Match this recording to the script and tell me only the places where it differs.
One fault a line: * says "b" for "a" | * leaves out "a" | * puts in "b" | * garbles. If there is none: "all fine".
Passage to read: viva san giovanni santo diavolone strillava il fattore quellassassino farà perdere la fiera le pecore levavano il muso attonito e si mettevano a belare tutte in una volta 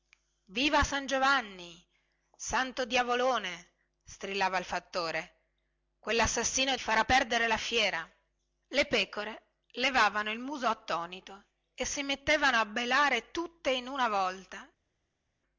all fine